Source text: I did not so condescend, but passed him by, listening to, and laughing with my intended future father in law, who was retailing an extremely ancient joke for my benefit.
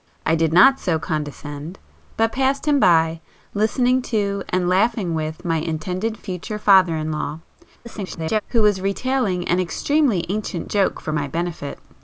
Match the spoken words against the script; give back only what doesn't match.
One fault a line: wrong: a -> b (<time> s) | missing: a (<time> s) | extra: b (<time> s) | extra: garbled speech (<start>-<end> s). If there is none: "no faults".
extra: garbled speech (7.8-8.4 s)